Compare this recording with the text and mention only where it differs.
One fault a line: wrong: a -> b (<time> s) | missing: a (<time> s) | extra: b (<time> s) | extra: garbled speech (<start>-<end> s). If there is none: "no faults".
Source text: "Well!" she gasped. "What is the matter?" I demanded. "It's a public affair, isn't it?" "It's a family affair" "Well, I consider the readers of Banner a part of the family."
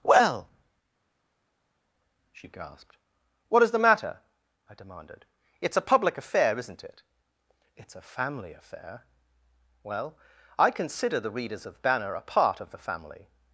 no faults